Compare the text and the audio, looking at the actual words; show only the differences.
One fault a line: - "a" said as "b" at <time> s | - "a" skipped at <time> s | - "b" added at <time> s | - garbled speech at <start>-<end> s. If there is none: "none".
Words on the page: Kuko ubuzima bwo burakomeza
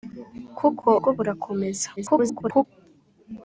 - "ubuzima" skipped at 0.9 s
- garbled speech at 2.0-2.7 s